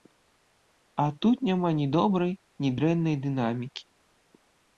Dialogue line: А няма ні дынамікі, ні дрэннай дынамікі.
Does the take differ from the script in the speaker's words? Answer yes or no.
yes